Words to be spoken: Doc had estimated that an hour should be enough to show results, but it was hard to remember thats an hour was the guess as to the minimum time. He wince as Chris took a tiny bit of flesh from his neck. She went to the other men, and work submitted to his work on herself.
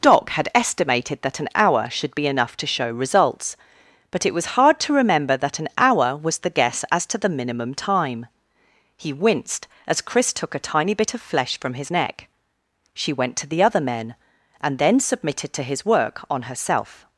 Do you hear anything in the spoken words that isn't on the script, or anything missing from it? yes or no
yes